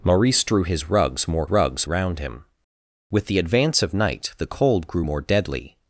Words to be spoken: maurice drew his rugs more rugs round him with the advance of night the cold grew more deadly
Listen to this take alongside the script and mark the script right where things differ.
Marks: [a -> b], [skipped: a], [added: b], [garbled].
maurice drew his rugs more rugs round him with the advance of night the cold grew more deadly